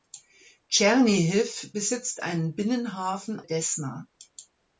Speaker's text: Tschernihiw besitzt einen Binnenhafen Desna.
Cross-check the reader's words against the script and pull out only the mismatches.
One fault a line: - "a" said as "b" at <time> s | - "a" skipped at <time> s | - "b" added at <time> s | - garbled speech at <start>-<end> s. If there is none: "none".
none